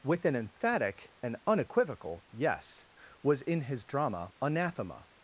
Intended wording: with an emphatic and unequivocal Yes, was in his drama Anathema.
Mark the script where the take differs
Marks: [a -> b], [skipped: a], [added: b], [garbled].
with an emphatic and unequivocal Yes, was in his drama Anathema.